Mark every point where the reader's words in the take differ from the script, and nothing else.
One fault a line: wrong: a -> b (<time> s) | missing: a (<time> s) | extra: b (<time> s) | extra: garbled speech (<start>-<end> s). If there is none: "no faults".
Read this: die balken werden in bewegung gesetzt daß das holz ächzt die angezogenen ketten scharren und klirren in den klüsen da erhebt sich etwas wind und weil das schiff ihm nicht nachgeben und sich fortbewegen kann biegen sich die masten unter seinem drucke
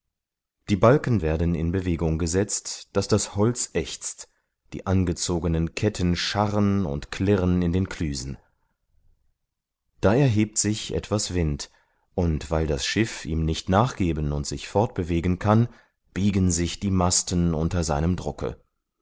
no faults